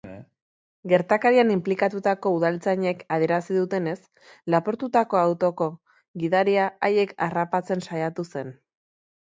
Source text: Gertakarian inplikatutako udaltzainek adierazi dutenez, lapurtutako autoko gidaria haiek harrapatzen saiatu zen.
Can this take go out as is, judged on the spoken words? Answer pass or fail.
pass